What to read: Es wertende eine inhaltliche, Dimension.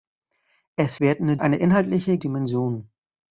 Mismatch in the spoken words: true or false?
false